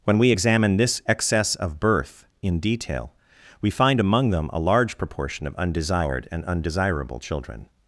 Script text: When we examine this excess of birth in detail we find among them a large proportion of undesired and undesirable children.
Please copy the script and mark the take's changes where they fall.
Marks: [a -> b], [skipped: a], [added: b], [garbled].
When we examine this excess of birth in detail we find among them a large proportion of undesired and undesirable children.